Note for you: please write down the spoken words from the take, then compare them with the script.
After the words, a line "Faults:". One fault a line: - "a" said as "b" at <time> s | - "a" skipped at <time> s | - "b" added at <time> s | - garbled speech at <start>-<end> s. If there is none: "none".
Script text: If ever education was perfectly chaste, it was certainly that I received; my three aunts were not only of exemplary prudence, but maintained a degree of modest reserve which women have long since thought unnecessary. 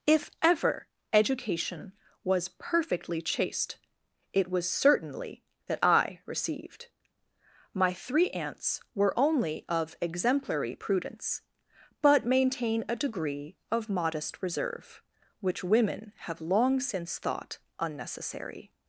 If ever education was perfectly chaste, it was certainly that I received; my three aunts were only of exemplary prudence, but maintain a degree of modest reserve which women have long since thought unnecessary.
Faults:
- "not" skipped at 9.1 s
- "maintained" said as "maintain" at 12.3 s